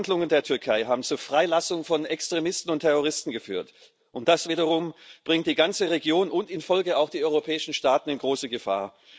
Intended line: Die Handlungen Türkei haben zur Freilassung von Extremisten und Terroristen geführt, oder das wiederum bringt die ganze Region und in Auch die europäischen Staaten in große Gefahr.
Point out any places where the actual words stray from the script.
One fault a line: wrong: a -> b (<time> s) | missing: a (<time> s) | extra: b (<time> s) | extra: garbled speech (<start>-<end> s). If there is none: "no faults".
extra: der (0.3 s)
wrong: oder -> und (4.1 s)
extra: Folge (6.6 s)